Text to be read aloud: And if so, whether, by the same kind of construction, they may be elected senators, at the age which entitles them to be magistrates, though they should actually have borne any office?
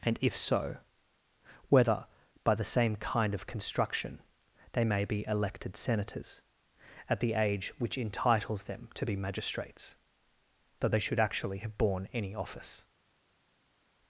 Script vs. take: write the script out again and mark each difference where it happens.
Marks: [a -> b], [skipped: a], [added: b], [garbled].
And if so, whether, by the same kind of construction, they may be elected senators, at the age which entitles them to be magistrates, though they should actually have borne any office?